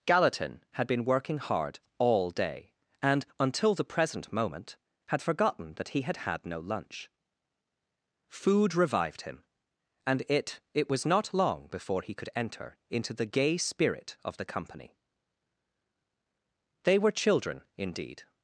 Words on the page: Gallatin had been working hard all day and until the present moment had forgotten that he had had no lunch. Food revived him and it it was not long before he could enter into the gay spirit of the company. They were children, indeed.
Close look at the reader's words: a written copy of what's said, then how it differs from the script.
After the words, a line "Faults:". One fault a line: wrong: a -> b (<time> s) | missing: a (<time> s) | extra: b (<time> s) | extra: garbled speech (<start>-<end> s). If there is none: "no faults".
Gallatin had been working hard all day and until the present moment had forgotten that he had had no lunch. Food revived him and it it was not long before he could enter into the gay spirit of the company. They were children, indeed.
Faults:
no faults